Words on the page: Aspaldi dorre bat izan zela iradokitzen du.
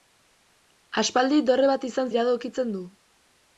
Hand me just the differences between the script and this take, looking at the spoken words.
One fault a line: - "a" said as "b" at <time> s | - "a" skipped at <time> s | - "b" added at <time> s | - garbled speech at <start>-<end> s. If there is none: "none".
- "zela" skipped at 2.1 s